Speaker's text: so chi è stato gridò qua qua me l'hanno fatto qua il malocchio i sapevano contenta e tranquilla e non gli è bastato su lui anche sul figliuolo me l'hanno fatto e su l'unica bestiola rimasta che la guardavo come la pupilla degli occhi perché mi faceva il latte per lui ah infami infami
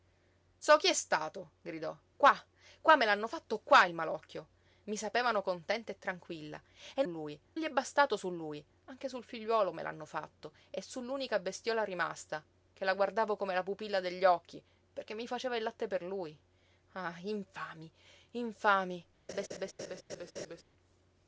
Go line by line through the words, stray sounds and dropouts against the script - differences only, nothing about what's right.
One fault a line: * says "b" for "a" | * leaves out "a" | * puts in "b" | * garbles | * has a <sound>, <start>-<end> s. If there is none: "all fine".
* says "lui" for "non"
* has a laugh, 19.3-20.6 s